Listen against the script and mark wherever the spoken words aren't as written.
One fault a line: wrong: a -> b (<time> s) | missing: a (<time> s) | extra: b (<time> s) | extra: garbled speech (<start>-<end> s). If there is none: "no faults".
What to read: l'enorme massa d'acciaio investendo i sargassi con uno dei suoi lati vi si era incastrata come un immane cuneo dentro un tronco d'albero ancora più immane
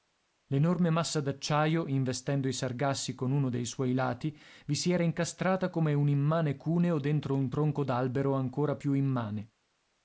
no faults